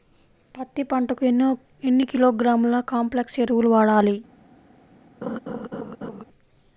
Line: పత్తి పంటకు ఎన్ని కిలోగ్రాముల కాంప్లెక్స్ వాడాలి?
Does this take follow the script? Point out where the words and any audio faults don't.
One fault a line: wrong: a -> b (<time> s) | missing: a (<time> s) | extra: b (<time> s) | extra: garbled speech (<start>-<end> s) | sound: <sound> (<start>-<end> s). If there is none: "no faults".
extra: ఎరువులు (3.4 s)
sound: laugh (5.2-6.2 s)